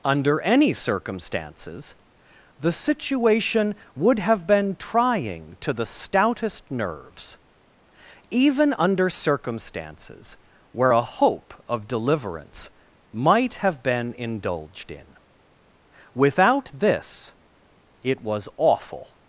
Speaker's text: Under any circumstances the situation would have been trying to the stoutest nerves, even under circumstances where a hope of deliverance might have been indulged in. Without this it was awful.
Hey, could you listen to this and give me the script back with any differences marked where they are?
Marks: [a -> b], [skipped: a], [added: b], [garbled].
Under any circumstances the situation would have been trying to the stoutest nerves, even under circumstances where a hope of deliverance might have been indulged in. Without this it was awful.